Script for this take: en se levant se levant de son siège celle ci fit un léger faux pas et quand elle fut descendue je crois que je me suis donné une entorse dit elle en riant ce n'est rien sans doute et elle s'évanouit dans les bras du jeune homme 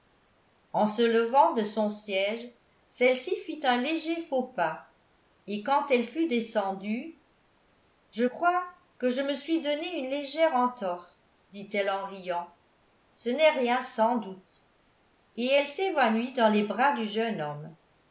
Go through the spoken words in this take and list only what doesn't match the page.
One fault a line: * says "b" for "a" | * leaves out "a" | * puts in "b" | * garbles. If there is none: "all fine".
* leaves out "se levant"
* puts in "légère"